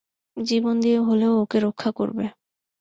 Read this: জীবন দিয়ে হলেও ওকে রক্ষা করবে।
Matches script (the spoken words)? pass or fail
pass